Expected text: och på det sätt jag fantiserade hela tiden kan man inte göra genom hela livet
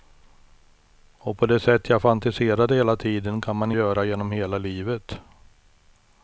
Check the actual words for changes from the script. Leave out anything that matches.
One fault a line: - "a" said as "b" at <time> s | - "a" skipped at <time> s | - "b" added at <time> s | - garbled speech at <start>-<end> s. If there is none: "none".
- "inte" skipped at 3.7 s